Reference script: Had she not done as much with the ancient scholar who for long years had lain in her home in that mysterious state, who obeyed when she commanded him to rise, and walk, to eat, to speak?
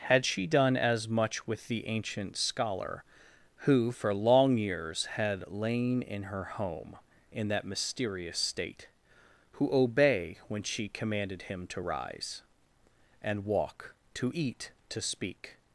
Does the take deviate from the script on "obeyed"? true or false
true